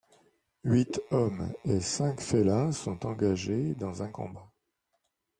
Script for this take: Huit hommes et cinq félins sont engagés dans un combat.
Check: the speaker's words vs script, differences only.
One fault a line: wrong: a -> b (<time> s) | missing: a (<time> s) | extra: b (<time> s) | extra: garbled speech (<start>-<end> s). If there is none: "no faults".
no faults